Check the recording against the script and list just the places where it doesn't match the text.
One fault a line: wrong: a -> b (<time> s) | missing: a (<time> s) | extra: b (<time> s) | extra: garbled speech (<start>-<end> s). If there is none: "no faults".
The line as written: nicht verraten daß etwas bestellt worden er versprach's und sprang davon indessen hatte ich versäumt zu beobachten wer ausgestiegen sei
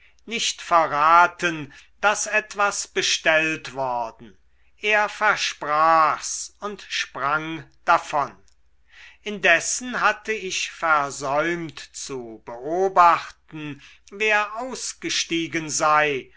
no faults